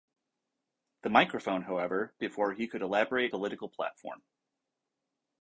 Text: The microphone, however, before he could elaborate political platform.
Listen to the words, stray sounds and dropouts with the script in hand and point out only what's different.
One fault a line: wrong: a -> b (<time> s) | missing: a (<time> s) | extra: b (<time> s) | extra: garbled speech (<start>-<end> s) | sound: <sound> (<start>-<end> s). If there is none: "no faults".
no faults